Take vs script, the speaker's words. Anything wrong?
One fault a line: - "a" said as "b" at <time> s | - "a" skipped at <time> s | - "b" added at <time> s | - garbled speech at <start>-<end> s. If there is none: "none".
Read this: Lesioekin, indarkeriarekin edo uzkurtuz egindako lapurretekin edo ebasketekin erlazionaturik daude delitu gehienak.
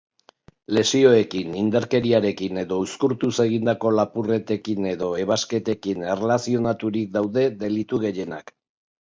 none